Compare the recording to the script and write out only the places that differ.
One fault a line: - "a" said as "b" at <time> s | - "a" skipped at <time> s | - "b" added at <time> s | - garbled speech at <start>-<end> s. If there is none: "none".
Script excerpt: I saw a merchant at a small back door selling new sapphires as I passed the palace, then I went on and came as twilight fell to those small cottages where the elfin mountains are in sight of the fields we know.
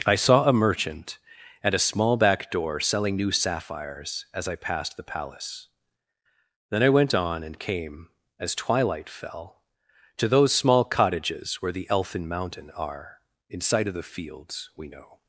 - "mountains" said as "mountain" at 12.3 s